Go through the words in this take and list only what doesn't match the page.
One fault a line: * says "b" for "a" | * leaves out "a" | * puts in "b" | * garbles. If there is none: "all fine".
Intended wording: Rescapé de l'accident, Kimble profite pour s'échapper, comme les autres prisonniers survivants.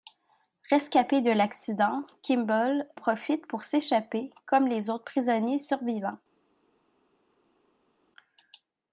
all fine